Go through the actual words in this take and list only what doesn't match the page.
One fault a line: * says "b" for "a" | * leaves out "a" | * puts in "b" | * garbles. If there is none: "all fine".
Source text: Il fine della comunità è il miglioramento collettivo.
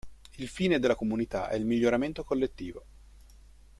all fine